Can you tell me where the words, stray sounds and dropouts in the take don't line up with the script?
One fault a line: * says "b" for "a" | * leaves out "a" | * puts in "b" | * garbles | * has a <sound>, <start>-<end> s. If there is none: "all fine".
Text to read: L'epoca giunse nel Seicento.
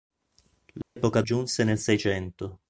* has a dropout, 0.8-1.0 s